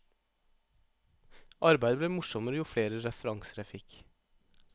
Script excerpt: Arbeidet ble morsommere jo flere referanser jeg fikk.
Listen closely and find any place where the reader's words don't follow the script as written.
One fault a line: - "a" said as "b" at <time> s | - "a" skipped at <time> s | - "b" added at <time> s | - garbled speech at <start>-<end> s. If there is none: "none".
none